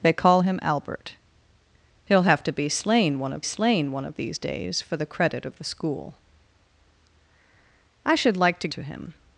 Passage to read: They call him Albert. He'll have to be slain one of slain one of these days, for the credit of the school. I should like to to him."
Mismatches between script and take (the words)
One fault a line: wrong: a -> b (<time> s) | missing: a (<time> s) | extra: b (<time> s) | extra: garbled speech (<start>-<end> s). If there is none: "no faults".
no faults